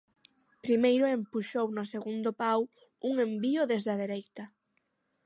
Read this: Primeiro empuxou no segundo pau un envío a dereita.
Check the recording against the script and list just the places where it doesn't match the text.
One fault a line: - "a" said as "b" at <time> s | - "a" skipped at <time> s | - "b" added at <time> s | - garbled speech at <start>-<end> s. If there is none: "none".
- "desde" added at 3.7 s